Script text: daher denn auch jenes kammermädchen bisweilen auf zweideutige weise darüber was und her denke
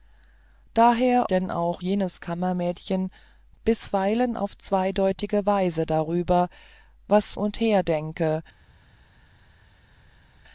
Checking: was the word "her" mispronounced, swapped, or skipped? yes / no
no